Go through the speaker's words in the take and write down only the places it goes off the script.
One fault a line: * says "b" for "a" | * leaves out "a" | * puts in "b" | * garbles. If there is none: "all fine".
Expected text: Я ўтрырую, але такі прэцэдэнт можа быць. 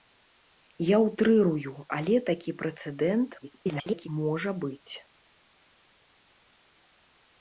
* garbles